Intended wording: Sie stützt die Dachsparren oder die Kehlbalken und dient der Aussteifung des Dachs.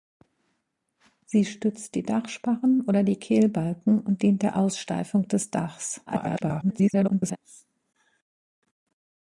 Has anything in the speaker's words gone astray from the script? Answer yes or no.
yes